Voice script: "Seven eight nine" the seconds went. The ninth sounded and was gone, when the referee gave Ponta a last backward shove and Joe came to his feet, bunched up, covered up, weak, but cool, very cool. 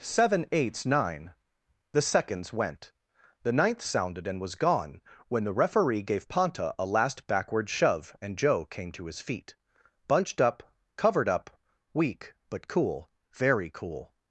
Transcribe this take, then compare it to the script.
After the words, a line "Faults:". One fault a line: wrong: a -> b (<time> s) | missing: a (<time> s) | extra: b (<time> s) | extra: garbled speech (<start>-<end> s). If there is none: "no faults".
"Seven eights nine" the seconds went. The ninth sounded and was gone, when the referee gave Ponta a last backward shove and Joe came to his feet, bunched up, covered up, weak, but cool, very cool.
Faults:
wrong: eight -> eights (0.5 s)